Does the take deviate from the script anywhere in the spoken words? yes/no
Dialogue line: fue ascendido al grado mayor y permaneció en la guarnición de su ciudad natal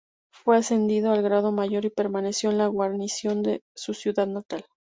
no